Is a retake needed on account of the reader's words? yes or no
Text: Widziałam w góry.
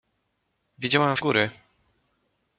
no